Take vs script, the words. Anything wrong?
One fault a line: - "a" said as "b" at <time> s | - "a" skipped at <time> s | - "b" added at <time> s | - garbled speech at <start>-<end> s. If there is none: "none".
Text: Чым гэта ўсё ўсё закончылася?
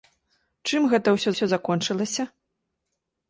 none